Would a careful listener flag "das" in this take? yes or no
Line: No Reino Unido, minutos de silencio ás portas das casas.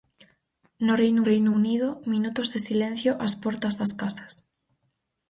no